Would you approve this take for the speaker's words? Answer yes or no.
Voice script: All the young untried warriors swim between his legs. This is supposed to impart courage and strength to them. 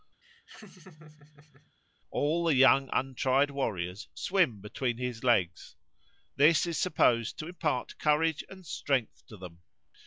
yes